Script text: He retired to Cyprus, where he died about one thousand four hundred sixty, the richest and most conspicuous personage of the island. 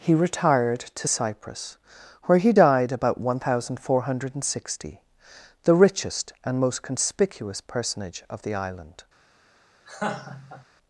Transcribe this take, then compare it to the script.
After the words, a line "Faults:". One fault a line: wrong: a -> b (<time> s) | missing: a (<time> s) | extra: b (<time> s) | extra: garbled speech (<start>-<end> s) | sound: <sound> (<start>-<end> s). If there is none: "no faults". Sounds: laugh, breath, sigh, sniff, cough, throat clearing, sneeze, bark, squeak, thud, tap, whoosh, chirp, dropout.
He retired to Cyprus, where he died about one thousand four hundred sixty, the richest and most conspicuous personage of the island.
Faults:
sound: laugh (9.8-10.6 s)